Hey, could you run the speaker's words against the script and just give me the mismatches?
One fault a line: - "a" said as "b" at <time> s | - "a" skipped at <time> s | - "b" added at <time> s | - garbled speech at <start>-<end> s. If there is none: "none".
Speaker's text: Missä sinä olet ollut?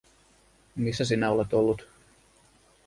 none